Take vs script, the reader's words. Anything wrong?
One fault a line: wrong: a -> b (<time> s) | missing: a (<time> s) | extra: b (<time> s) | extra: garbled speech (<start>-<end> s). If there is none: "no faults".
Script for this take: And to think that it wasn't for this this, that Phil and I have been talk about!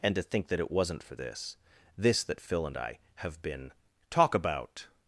no faults